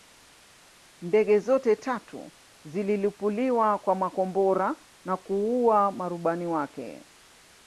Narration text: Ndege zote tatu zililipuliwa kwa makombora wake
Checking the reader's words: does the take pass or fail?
fail